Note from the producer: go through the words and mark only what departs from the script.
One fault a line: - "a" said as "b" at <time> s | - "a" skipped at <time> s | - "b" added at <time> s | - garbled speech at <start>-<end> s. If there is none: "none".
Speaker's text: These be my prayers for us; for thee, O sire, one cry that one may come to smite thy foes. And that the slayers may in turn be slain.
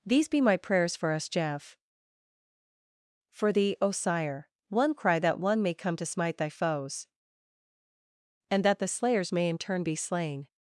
- "jeff" added at 1.3 s